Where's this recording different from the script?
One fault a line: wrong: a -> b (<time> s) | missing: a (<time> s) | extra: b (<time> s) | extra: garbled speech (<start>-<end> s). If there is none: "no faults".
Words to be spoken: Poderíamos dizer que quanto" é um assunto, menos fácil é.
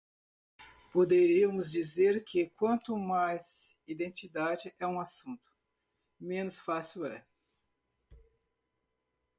extra: mais identidade (3.0 s)